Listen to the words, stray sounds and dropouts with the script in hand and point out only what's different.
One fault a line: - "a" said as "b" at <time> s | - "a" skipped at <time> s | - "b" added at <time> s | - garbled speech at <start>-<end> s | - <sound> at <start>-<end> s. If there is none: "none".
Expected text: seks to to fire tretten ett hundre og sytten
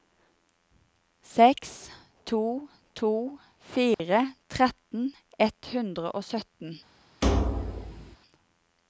- dropout at 3.9-4.0 s
- thud at 7.2-8.2 s